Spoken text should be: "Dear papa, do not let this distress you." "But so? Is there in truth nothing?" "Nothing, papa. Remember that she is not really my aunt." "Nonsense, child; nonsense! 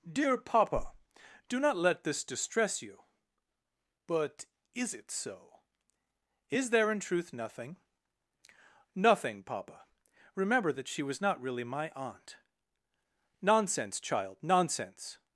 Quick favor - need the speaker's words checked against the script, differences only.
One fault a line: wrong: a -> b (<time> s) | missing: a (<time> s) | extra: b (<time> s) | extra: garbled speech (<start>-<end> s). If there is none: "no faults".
extra: is it (4.7 s)
wrong: is -> was (11.0 s)